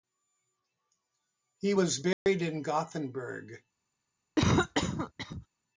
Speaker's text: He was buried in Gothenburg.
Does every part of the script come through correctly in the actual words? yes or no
yes